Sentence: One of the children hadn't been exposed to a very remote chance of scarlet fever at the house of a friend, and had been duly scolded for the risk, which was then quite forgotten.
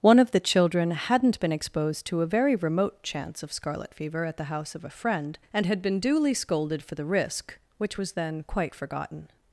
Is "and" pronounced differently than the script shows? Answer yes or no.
no